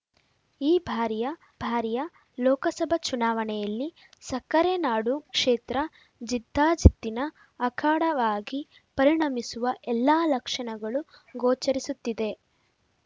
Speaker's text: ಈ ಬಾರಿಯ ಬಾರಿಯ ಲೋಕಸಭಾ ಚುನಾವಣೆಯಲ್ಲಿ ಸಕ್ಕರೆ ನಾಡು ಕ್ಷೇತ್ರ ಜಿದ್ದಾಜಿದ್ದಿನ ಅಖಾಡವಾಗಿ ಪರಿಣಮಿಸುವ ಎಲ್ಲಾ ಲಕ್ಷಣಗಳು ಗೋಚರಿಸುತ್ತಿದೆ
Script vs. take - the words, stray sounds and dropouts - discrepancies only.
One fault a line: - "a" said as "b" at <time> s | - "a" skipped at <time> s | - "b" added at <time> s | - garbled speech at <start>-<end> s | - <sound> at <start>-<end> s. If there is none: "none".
none